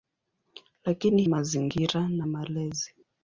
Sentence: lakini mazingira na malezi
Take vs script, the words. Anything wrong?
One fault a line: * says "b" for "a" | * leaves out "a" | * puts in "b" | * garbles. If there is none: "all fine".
all fine